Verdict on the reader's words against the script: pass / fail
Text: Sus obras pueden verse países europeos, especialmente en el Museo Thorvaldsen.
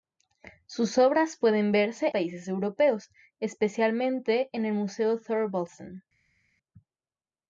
pass